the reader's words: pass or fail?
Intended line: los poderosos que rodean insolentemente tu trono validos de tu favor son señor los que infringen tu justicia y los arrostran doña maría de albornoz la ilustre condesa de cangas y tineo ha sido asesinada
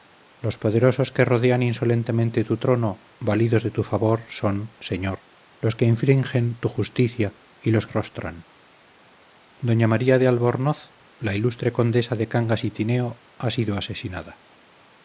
pass